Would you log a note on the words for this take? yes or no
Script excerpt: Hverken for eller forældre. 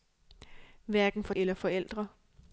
no